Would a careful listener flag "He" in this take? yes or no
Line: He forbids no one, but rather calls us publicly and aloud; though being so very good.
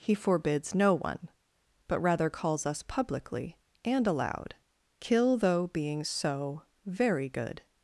no